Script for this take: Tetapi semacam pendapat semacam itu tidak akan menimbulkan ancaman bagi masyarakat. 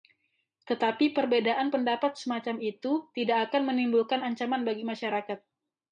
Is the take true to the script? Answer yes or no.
no